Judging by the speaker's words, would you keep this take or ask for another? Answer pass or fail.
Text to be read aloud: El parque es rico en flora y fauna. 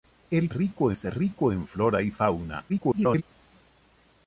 fail